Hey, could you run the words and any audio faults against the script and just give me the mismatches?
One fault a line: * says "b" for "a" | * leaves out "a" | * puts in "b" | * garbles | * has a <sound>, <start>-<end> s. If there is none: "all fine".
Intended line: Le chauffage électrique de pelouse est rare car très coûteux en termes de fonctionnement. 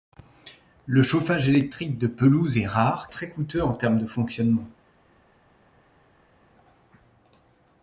* leaves out "car"